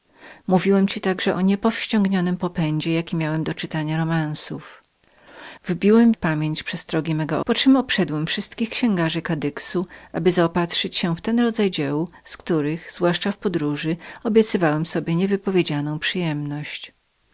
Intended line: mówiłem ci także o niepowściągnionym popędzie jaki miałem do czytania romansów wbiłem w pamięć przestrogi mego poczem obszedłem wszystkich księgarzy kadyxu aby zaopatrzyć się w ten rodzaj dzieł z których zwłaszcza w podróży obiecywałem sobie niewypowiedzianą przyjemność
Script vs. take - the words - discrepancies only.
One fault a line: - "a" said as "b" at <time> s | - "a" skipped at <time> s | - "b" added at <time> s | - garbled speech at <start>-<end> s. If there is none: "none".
none